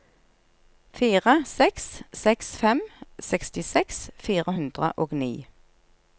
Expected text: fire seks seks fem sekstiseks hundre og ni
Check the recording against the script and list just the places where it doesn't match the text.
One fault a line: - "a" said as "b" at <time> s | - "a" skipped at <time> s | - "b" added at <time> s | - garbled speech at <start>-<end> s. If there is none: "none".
- "fire" added at 4.3 s